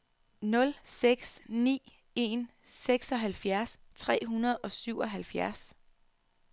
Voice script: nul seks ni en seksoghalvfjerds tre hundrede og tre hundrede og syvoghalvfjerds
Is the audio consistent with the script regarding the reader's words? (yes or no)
no